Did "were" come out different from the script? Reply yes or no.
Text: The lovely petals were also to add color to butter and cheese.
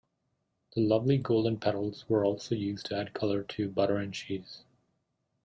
no